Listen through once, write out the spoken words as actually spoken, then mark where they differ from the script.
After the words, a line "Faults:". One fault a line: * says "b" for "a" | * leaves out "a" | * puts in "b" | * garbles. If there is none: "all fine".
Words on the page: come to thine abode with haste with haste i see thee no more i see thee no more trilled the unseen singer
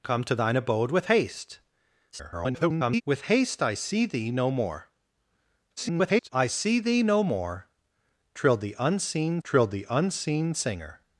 come to thine abode with haste [garbled] with haste i see thee no more [garbled] i see thee no more trilled the unseen trilled the unseen singer
Faults:
* garbles
* garbles
* puts in "trilled the unseen"